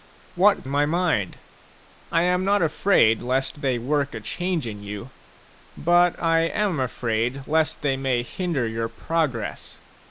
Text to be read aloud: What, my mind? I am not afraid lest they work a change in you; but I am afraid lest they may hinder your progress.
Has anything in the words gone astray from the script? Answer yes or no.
no